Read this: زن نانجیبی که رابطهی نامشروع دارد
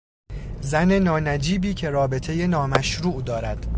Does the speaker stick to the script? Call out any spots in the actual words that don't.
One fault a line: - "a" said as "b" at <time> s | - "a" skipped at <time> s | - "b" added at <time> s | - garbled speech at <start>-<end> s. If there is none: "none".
none